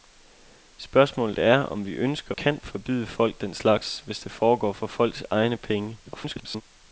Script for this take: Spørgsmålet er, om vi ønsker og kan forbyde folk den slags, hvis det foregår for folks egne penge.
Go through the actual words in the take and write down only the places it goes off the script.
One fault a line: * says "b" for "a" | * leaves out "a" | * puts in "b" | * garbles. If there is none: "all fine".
* leaves out "og"
* garbles